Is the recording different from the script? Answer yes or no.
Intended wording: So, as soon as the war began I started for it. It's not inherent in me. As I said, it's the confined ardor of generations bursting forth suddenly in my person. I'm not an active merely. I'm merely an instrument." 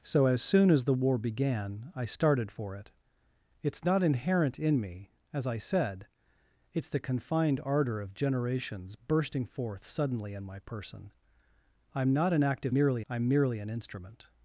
no